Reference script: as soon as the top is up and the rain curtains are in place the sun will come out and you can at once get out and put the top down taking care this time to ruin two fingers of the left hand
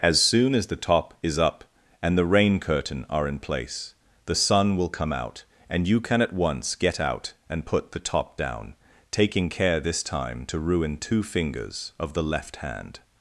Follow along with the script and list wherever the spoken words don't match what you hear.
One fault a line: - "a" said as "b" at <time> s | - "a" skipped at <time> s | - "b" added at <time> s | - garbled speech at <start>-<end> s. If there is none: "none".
- "curtains" said as "curtain" at 2.6 s